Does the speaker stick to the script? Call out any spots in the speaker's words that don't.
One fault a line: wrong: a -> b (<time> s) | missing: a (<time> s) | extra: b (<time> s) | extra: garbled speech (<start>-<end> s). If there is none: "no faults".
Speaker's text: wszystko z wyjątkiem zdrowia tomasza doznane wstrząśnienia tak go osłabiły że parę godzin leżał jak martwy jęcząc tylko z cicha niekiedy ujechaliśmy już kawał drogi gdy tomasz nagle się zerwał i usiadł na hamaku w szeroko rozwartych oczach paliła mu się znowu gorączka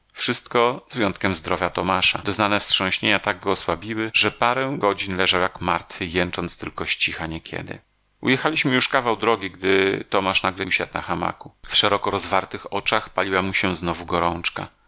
missing: się zerwał i (10.7 s)